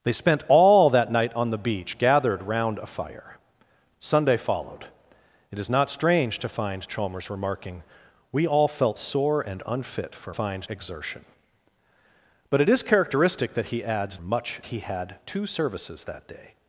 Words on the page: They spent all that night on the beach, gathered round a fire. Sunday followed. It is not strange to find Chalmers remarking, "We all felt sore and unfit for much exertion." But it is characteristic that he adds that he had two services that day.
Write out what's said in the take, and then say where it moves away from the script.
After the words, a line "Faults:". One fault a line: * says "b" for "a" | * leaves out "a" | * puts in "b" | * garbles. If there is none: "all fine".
They spent all that night on the beach, gathered round a fire. Sunday followed. It is not strange to find Chalmers remarking, "We all felt sore and unfit for find exertion." But it is characteristic that he adds much he had two services that day.
Faults:
* says "find" for "much"
* says "much" for "that"